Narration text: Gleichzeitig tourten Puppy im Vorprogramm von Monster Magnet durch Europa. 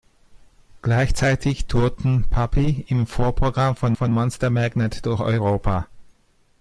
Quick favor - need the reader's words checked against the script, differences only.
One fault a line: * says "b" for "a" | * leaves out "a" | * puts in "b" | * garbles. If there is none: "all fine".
* puts in "von"